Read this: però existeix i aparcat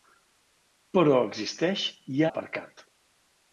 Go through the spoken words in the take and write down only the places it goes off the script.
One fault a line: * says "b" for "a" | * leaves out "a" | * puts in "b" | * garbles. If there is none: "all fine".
all fine